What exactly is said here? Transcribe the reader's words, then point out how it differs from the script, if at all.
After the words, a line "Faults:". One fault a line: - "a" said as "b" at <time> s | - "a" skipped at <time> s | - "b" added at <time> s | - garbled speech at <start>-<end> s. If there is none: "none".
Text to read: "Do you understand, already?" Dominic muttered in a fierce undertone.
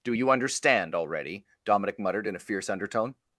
"Do you understand, already?" Dominic muttered in a fierce undertone.
Faults:
none